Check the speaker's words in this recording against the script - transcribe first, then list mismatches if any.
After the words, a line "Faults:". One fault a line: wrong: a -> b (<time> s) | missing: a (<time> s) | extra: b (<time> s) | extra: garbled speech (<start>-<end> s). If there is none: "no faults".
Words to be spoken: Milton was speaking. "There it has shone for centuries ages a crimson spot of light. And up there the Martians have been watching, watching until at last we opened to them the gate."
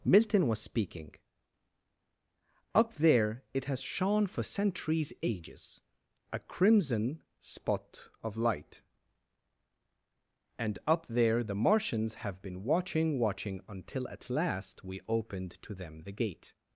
Milton was speaking. "Up there it has shone for centuries ages a crimson spot of light. And up there the Martians have been watching, watching until at last we opened to them the gate."
Faults:
extra: Up (2.7 s)